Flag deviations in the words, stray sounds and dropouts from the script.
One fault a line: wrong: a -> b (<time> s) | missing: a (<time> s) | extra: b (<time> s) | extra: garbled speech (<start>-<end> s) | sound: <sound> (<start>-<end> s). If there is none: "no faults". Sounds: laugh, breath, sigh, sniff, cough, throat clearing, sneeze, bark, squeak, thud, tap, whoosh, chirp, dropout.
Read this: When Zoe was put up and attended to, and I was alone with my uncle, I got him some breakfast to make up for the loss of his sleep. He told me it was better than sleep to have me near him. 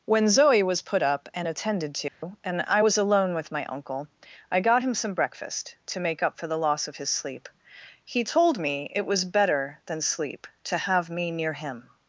sound: dropout (2.1-2.2 s)